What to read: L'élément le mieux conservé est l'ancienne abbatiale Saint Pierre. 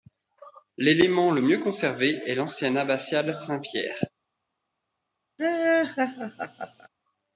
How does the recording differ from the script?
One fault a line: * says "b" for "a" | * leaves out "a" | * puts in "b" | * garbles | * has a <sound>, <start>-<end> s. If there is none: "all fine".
* has a laugh, 5.4-6.9 s